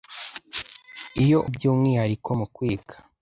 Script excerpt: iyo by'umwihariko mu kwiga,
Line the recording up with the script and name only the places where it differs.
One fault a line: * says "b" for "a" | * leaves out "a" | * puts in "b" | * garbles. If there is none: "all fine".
all fine